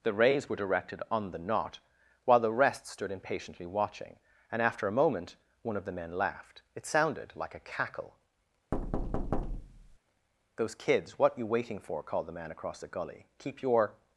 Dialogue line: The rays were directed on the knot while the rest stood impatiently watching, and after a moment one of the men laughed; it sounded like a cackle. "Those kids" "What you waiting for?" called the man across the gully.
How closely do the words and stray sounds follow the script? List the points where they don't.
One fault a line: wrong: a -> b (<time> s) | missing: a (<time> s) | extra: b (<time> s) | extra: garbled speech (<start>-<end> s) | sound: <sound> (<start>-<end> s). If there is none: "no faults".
sound: thud (8.7-10.0 s)
extra: Keep your (13.4 s)